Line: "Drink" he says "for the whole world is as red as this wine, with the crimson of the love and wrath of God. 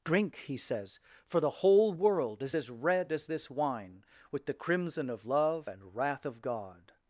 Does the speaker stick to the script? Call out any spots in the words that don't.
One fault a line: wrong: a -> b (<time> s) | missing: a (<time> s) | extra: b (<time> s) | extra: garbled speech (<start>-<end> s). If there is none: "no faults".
missing: the (5.3 s)